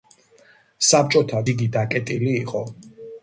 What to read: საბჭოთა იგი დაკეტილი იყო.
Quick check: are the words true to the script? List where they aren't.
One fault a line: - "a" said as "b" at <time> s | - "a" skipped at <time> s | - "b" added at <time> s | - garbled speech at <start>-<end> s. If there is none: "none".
none